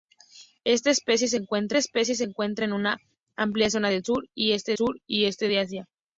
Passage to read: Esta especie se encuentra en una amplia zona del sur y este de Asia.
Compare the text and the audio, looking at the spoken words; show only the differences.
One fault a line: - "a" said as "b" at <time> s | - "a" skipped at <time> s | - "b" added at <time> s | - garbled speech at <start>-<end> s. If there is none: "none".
- "especie se encuentra" added at 1.8 s
- "sur y este" added at 4.8 s